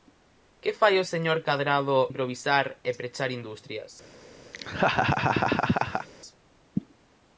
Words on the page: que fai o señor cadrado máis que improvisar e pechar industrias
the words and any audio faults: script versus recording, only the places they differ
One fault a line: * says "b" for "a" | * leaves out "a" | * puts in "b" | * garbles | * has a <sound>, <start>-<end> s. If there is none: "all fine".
* leaves out "máis que"
* has a laugh, 4.5-6.1 s